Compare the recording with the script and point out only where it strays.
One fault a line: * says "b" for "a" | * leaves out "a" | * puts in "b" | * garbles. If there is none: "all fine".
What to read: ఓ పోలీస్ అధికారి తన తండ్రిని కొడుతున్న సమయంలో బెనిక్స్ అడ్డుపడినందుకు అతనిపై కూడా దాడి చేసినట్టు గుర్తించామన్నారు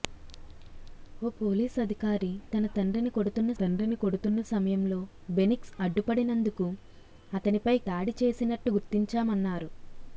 * puts in "తండ్రిని కొడుతున్న"
* leaves out "కూడా"